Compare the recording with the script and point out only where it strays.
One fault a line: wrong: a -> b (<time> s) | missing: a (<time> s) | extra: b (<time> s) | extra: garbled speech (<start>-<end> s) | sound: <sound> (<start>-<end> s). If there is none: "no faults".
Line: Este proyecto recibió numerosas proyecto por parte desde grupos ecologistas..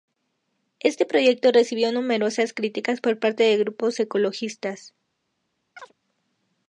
wrong: proyecto -> críticas (2.5 s)
wrong: desde -> de (3.4 s)
sound: chirp (5.8-5.9 s)